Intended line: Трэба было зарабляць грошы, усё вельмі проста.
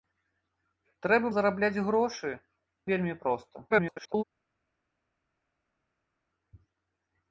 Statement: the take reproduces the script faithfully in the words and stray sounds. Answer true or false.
false